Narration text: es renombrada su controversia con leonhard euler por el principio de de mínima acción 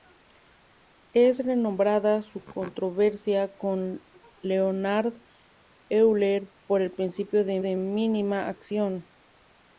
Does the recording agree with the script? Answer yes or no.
yes